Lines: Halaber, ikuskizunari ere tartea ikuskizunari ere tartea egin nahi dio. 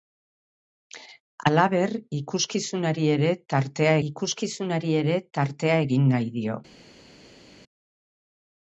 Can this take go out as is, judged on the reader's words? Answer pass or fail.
pass